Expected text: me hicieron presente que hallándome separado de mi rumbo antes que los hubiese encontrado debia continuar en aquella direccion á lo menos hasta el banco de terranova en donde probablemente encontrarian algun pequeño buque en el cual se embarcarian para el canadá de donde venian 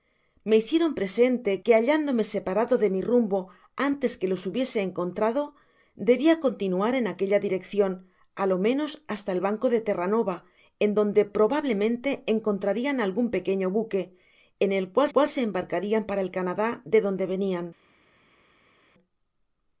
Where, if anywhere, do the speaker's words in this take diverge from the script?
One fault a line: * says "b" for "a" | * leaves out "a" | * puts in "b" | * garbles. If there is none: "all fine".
* puts in "cual"